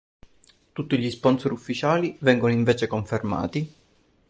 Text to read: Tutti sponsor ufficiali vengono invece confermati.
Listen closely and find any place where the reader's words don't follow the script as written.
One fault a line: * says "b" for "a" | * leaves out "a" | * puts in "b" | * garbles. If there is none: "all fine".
* puts in "gli"